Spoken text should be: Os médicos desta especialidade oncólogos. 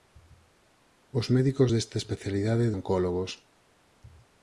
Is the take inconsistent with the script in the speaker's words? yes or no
no